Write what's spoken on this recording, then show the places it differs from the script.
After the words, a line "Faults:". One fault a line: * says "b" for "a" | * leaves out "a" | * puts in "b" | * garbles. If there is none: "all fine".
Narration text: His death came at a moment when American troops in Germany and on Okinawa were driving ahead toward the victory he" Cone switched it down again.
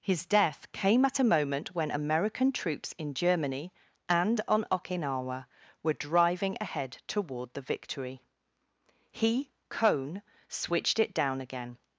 His death came at a moment when American troops in Germany and on Okinawa were driving ahead toward the victory he" Cone switched it down again.
Faults:
all fine